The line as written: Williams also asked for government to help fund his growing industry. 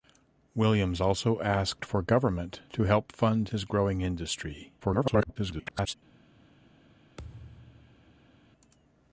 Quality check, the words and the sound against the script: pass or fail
fail